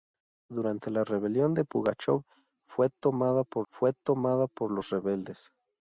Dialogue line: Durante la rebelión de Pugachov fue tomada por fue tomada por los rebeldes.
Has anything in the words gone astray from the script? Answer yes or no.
no